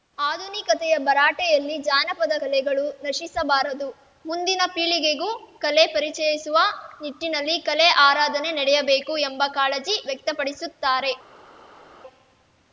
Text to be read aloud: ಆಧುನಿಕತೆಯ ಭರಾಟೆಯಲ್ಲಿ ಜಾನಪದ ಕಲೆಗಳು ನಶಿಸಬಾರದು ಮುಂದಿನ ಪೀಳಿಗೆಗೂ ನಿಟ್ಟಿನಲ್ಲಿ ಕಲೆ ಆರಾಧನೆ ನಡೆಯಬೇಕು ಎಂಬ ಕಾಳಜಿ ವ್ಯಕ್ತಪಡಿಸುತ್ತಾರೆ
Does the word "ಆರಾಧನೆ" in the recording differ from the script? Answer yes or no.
no